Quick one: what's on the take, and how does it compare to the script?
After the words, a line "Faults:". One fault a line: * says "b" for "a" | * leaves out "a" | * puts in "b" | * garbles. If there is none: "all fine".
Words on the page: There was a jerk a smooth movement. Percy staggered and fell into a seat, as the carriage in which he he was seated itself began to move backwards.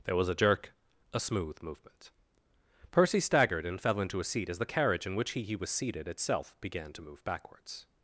There was a jerk a smooth movement. Percy staggered and fell into a seat, as the carriage in which he he was seated itself began to move backwards.
Faults:
all fine